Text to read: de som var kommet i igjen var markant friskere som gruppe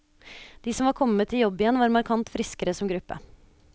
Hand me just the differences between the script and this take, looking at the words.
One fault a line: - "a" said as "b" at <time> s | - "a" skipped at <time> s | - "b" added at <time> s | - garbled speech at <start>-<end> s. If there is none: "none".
- "jobb" added at 1.4 s